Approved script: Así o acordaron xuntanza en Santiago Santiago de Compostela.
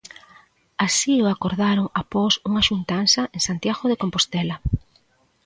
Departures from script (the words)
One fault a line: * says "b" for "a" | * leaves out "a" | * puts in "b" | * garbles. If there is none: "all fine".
* puts in "após unha"
* leaves out "Santiago"